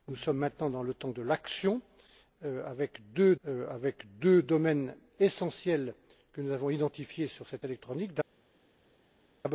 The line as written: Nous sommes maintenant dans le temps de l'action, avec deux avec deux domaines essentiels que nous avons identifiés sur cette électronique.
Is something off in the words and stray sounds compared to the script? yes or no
no